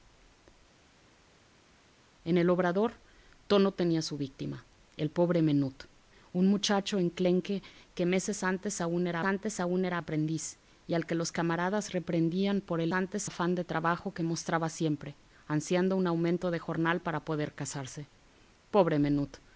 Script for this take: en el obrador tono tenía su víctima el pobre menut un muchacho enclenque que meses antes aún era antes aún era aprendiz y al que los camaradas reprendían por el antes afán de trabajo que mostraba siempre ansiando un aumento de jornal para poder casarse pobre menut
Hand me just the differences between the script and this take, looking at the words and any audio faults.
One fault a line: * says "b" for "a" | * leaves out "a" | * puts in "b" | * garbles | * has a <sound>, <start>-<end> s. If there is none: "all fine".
all fine